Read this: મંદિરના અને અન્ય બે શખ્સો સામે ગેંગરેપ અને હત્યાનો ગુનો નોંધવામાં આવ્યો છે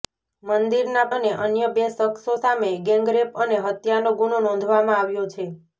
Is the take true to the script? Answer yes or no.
yes